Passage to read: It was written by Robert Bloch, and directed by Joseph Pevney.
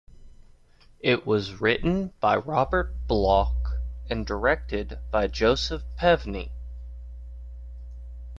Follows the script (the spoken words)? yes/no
yes